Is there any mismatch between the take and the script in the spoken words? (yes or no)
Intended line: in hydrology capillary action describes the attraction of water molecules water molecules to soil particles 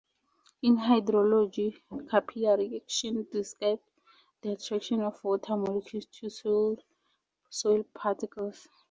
yes